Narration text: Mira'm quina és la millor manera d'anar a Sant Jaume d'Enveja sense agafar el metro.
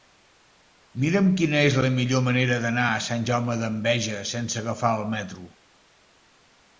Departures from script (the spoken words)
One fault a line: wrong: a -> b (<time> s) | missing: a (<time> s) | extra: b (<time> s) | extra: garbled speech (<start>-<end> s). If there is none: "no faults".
no faults